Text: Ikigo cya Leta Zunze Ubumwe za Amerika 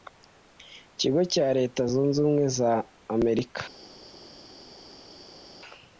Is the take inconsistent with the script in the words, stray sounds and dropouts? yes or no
no